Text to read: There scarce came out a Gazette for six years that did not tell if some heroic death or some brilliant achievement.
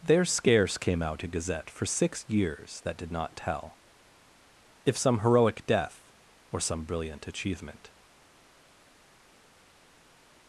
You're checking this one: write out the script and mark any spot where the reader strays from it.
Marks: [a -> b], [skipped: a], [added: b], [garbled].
There scarce came out a Gazette for six years that did not tell if some heroic death or some brilliant achievement.